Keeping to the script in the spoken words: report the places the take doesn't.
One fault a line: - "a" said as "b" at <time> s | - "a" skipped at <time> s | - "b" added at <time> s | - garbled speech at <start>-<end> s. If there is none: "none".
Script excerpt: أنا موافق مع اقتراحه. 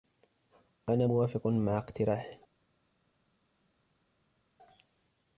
none